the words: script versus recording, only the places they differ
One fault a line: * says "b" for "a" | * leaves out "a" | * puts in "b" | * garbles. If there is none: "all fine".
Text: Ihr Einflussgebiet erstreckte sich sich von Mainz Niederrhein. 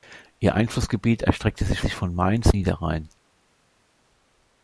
all fine